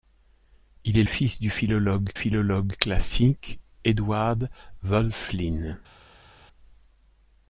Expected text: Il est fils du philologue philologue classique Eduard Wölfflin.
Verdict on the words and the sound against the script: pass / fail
pass